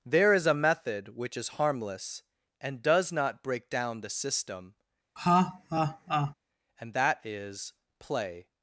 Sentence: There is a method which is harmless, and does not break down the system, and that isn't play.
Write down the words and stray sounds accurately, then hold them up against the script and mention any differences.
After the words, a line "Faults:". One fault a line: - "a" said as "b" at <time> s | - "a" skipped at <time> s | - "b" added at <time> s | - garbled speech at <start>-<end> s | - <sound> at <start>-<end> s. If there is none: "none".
There is a method which is harmless, and does not break down the system, and that is play.
Faults:
- laugh at 5.2-6.3 s
- "isn't" said as "is" at 7.2 s